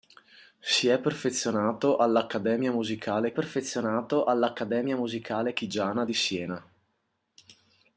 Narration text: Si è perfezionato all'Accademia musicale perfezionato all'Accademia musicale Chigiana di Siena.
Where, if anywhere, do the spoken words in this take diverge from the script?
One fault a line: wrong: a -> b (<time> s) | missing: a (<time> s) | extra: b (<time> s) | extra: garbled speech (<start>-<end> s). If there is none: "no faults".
no faults